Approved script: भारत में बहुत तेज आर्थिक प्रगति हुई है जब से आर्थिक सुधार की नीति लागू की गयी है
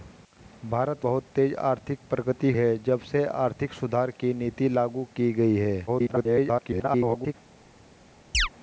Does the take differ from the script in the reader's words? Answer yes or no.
yes